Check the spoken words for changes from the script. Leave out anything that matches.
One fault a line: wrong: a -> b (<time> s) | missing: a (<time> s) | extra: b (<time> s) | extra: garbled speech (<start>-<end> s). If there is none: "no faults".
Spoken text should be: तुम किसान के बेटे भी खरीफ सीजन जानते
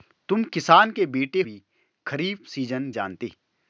no faults